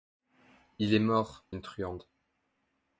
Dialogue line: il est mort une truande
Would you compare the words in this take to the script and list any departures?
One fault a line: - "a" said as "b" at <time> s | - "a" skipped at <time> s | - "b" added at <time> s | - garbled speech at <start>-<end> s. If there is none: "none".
none